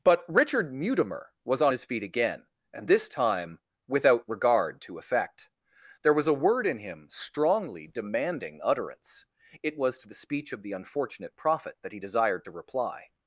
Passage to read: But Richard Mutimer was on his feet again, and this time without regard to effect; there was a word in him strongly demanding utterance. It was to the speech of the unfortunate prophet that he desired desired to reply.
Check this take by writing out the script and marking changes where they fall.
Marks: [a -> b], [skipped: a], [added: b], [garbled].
But Richard Mutimer was on his feet again, and this time without regard to effect; there was a word in him strongly demanding utterance. It was to the speech of the unfortunate prophet that he desired [skipped: desired] to reply.